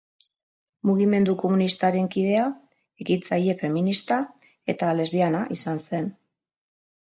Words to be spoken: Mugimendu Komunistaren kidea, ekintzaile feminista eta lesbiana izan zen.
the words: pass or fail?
pass